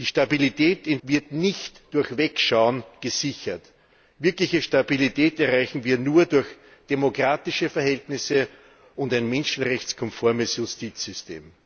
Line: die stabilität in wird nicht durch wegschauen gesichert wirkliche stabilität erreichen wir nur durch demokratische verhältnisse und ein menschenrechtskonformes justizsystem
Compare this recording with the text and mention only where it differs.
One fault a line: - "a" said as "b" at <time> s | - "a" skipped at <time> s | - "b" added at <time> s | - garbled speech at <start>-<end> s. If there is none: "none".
none